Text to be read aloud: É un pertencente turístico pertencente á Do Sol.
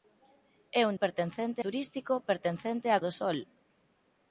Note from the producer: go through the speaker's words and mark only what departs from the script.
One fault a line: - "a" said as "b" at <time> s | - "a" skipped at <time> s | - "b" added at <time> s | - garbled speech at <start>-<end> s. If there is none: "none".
none